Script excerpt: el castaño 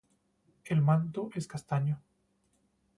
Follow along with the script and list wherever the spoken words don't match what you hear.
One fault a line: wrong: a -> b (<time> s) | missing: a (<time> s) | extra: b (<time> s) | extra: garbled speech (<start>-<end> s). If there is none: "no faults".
extra: manto es (0.8 s)